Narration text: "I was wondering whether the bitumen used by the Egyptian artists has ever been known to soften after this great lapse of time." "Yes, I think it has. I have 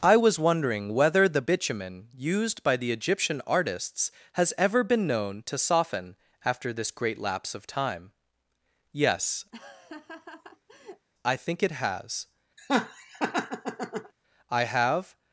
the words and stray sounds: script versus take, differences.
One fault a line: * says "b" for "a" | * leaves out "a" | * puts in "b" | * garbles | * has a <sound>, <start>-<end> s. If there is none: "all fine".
* has a laugh, 9.5-11.1 s
* has a laugh, 12.6-14.1 s